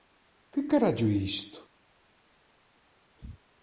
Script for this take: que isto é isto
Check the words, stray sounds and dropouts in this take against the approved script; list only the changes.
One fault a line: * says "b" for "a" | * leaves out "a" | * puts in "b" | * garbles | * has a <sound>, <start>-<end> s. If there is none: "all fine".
* says "carallo" for "isto"